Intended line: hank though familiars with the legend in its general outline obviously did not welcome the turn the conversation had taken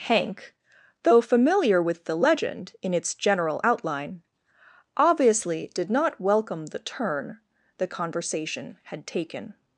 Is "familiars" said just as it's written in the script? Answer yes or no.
no